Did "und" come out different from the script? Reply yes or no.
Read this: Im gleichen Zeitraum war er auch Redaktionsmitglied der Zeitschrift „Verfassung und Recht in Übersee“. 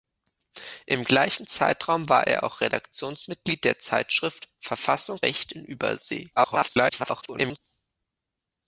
yes